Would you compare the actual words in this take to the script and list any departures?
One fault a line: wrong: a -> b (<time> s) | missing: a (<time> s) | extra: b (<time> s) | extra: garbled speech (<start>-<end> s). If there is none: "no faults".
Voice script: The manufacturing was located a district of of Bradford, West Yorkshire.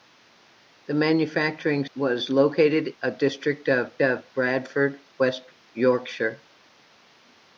no faults